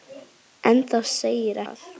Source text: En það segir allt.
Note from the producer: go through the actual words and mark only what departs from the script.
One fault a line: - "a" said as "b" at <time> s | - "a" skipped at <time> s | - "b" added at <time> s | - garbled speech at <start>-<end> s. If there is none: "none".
none